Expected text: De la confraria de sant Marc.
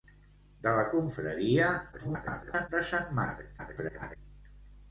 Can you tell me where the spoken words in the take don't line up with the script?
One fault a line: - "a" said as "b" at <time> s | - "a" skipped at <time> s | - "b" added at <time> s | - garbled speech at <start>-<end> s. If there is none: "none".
- garbled speech at 1.9-2.7 s
- garbled speech at 3.6-4.2 s